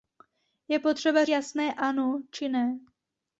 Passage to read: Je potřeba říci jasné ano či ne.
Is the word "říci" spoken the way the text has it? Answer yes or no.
no